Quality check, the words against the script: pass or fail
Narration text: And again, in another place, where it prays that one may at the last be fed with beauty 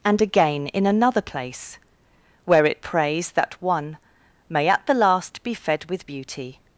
pass